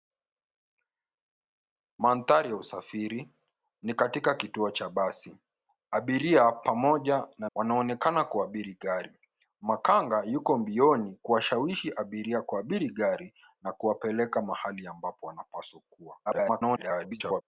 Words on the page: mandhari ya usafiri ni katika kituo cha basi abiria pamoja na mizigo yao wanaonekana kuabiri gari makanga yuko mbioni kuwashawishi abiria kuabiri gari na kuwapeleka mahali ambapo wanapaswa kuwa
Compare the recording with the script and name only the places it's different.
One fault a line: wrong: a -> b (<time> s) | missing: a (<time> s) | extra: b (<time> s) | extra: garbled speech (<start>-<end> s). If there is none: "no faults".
missing: mizigo yao (7.5 s)
extra: garbled speech (16.3-17.4 s)